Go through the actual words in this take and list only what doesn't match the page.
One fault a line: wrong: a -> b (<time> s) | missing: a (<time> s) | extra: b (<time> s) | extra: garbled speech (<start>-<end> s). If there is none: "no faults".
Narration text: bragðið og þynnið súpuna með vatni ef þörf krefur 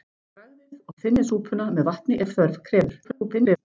extra: garbled speech (3.0-3.6 s)